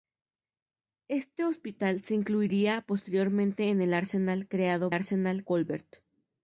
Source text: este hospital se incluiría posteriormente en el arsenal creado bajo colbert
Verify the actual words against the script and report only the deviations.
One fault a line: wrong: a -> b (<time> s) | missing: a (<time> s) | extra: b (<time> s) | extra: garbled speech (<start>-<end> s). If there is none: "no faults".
wrong: bajo -> arsenal (4.9 s)